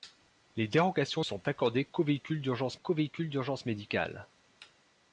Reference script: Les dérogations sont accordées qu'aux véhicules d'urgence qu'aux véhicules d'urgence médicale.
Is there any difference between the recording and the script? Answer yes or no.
no